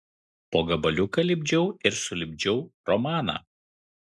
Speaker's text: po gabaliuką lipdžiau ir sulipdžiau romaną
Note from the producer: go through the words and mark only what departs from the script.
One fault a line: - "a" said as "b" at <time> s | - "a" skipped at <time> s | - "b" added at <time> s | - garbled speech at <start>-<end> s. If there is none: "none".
none